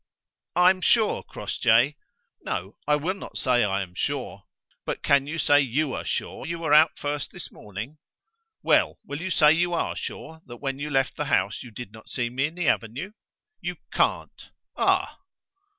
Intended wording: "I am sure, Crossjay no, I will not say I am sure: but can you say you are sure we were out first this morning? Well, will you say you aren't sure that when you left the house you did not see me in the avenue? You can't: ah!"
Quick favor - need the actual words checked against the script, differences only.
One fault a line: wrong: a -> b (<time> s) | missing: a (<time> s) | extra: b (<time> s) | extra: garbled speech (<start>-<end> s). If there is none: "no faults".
wrong: we -> you (6.4 s)
wrong: aren't -> are (9.7 s)